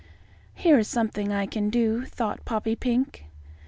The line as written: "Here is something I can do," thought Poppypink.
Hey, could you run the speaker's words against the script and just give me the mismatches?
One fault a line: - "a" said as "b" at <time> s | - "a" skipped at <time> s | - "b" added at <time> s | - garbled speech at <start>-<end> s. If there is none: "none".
none